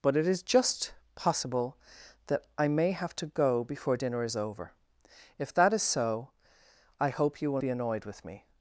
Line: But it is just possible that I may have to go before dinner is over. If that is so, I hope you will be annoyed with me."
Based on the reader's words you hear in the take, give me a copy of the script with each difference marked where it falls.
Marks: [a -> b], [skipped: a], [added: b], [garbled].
But it is just possible that I may have to go before dinner is over. If that is so, I hope you will be annoyed with me."